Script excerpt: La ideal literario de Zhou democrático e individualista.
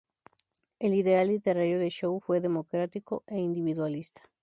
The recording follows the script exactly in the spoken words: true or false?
false